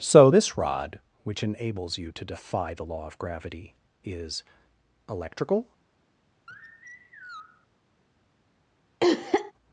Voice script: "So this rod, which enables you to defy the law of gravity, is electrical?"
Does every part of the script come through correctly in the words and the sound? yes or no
no